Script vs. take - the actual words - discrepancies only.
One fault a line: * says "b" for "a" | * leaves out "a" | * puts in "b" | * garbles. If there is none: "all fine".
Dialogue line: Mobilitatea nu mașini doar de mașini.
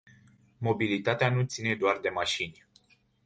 * says "ține" for "mașini"